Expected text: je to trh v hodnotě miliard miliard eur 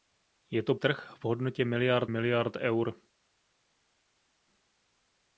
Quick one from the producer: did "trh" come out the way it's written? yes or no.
yes